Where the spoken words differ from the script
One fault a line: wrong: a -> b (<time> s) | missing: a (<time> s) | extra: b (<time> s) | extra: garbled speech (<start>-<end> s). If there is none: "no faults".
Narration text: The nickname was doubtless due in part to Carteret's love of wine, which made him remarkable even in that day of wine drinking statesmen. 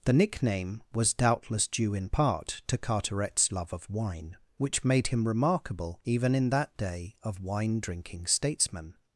no faults